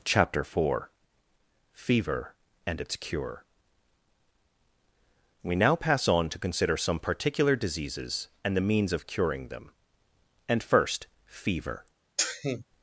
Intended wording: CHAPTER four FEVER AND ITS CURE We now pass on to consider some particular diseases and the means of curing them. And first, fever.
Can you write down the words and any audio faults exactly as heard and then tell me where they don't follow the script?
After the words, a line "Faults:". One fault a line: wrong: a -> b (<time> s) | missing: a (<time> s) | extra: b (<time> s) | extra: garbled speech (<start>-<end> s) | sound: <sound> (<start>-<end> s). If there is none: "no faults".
CHAPTER four FEVER AND ITS CURE We now pass on to consider some particular diseases and the means of curing them. And first, fever.
Faults:
sound: sneeze (12.2-12.6 s)